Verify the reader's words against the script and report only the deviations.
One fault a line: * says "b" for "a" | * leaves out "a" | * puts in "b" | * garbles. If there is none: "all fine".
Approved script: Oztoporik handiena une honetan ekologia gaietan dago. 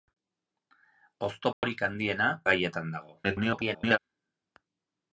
* leaves out "une honetan ekologia"
* garbles